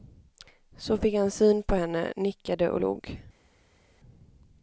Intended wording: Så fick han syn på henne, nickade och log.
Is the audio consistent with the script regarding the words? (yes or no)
yes